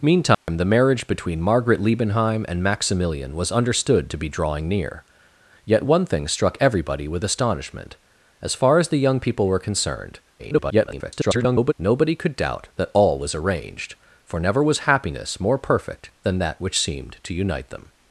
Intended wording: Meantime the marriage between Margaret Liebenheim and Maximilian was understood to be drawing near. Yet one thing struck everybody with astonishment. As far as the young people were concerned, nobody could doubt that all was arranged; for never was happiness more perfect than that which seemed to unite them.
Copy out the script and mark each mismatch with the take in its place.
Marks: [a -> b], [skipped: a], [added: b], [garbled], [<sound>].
Meantime [dropout] the marriage between Margaret Liebenheim and Maximilian was understood to be drawing near. Yet one thing struck everybody with astonishment. As far as the young people were concerned, [garbled] nobody could doubt that all was arranged; for never was happiness more perfect than that which seemed to unite them.